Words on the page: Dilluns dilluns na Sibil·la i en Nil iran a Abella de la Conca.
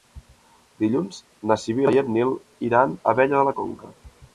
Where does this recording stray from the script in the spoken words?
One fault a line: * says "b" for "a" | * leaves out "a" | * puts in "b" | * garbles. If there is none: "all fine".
* leaves out "dilluns"